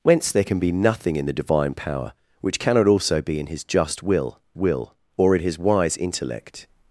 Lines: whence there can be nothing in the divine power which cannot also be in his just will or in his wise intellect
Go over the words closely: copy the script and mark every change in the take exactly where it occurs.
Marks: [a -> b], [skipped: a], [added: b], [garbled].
whence there can be nothing in the divine power which cannot also be in his just will [added: will] or in his wise intellect